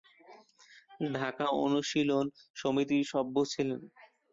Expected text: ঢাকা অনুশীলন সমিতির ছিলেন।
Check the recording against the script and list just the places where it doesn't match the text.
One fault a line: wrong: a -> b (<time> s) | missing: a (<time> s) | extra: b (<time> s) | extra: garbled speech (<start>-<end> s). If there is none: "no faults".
extra: সভ্য (3.1 s)